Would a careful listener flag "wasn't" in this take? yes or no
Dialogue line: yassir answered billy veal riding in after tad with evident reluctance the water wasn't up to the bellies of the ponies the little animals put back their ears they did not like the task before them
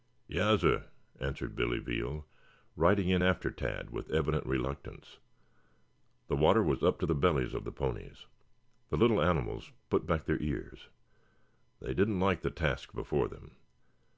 yes